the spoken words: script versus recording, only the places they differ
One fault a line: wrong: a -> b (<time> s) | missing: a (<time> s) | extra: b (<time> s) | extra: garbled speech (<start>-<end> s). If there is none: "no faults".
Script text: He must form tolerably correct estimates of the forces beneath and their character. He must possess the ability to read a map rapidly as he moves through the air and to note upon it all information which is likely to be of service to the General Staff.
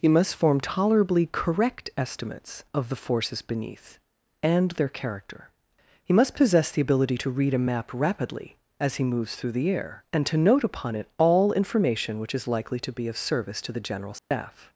no faults